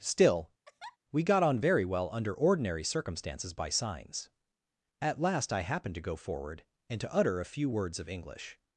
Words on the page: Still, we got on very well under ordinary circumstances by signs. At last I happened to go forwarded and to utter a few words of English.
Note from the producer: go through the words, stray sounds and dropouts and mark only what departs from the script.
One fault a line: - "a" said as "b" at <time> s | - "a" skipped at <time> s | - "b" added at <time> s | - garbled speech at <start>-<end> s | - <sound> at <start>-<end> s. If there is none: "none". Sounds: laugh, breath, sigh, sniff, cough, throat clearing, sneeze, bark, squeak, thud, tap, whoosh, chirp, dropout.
- laugh at 0.7-1.0 s
- "forwarded" said as "forward" at 6.1 s